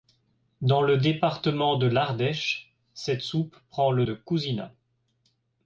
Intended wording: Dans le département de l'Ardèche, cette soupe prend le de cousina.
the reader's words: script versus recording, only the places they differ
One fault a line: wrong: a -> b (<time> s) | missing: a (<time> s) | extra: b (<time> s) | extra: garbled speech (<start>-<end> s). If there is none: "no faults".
no faults